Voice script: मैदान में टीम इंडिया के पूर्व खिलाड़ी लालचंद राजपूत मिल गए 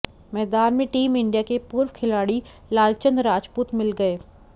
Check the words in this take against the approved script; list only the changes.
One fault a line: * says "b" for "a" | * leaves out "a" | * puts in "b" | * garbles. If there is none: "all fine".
all fine